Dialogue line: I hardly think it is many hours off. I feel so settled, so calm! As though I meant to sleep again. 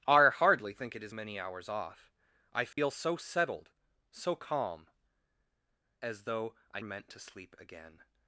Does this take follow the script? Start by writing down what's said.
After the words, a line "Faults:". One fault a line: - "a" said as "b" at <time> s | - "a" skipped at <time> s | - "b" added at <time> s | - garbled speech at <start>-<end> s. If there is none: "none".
I hardly think it is many hours off. I feel so settled, so calm! As though I meant to sleep again.
Faults:
none